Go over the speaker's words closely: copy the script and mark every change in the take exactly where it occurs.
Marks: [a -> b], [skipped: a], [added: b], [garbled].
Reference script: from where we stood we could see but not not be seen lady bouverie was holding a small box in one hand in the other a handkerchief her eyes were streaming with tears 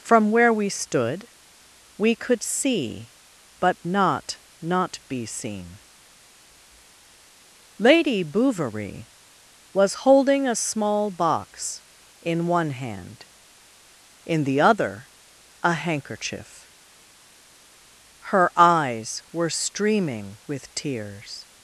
from where we stood we could see but not not be seen lady bouverie was holding a small box in one hand in the other a handkerchief her eyes were streaming with tears